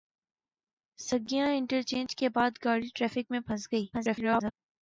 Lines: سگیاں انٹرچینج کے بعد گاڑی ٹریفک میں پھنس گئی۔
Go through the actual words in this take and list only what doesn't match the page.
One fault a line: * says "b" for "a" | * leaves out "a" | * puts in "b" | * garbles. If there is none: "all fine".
* garbles